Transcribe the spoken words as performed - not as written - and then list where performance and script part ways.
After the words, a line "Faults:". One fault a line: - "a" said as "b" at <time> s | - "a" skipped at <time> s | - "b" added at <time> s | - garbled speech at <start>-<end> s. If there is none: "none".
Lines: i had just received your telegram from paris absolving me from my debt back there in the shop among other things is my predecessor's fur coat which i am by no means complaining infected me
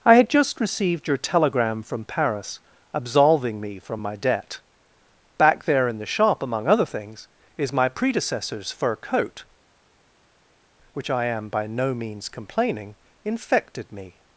i had just received your telegram from paris absolving me from my debt back there in the shop among other things is my predecessor's fur coat which i am by no means complaining infected me
Faults:
none